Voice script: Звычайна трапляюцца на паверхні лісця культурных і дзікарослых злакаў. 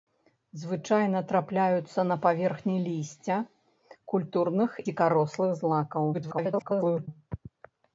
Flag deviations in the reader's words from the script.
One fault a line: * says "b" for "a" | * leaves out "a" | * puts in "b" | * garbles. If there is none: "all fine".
* leaves out "і"
* garbles